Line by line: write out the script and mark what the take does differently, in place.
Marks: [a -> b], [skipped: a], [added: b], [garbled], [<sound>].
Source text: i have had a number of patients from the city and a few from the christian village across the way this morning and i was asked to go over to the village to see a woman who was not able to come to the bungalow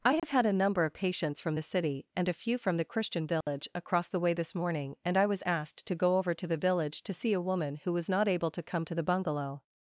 i have [dropout] had a number of patients from the city and a few from the christian village [dropout] across the way this morning and i was asked to go over to the village to see a woman who was not able to come to the bungalow